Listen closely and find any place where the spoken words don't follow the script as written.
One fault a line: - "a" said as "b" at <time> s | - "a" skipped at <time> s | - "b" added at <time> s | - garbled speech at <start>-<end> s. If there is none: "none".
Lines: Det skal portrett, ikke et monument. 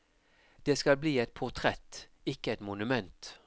- "bli et" added at 1.0 s